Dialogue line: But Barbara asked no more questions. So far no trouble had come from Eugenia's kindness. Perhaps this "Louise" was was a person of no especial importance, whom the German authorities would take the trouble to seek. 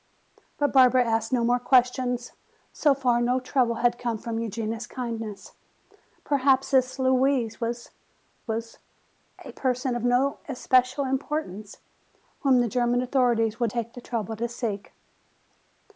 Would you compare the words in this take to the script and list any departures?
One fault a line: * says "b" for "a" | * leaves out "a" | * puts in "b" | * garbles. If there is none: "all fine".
all fine